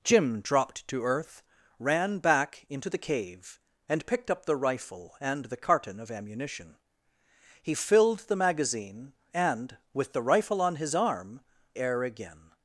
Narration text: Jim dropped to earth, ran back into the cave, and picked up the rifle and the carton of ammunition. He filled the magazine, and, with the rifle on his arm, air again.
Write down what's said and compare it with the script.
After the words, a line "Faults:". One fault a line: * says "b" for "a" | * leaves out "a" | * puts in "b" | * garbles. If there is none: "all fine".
Jim dropped to earth, ran back into the cave, and picked up the rifle and the carton of ammunition. He filled the magazine, and, with the rifle on his arm, air again.
Faults:
all fine